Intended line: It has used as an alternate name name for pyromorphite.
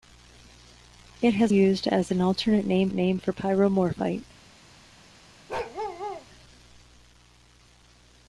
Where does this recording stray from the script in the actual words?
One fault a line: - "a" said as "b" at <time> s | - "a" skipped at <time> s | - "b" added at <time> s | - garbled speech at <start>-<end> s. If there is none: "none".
none